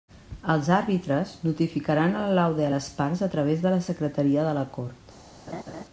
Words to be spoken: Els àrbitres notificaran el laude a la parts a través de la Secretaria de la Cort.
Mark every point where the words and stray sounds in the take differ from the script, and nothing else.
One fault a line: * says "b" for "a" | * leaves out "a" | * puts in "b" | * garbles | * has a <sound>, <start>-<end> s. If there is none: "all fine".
* says "les" for "la"
* has a laugh, 5.5-5.8 s